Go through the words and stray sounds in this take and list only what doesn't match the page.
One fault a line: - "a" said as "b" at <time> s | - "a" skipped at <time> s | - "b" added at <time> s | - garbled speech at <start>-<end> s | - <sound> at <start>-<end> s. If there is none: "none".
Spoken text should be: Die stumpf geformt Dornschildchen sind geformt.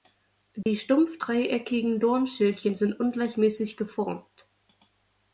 - dropout at 0.6-0.7 s
- "geformt" said as "dreieckigen" at 1.2 s
- "ungleichmäßig" added at 3.0 s